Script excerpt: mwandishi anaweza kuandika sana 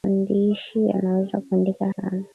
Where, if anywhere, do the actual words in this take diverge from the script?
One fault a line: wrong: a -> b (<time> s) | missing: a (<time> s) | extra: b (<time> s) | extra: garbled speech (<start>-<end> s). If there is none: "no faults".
no faults